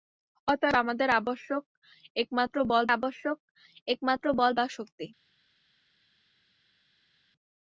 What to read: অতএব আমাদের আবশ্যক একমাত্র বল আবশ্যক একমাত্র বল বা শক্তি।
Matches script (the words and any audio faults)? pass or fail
pass